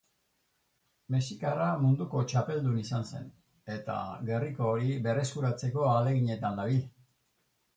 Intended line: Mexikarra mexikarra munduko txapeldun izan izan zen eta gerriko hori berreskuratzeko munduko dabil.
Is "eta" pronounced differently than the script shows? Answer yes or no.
no